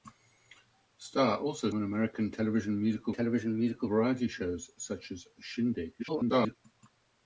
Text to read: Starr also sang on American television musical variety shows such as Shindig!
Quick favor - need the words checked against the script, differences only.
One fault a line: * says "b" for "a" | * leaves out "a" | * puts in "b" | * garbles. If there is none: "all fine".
* leaves out "sang"
* puts in "television musical"
* garbles